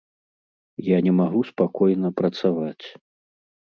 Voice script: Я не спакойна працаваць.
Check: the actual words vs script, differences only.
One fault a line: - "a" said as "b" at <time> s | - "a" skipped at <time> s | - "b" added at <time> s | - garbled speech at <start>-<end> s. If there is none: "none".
- "магу" added at 1.2 s